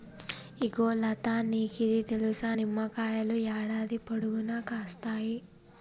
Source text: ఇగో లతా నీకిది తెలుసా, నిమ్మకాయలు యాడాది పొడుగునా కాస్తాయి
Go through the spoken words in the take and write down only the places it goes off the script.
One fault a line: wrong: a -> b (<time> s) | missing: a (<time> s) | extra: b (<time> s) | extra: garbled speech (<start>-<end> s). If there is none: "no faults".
no faults